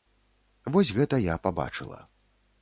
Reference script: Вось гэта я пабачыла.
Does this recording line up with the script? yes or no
yes